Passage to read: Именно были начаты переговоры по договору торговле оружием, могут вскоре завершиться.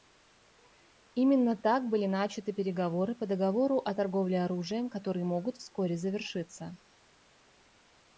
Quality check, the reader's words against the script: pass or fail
fail